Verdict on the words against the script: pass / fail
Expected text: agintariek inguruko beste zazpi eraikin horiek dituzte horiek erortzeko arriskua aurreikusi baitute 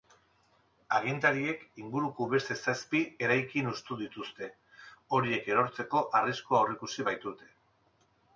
fail